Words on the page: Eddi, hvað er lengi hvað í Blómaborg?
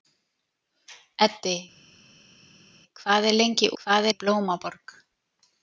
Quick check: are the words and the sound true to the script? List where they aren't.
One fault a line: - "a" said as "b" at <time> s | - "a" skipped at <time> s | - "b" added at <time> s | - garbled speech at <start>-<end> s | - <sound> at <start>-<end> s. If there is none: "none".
none